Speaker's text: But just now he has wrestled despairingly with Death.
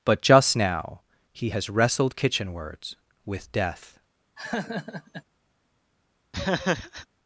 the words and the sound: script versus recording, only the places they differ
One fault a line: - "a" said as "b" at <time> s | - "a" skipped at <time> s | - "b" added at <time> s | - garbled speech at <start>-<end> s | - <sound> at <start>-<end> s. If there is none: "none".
- "despairingly" said as "kitchenwards" at 2.2 s
- laugh at 4.4-5.2 s
- laugh at 6.3-7.1 s